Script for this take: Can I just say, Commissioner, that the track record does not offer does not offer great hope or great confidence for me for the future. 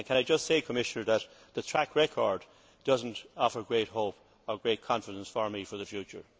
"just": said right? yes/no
yes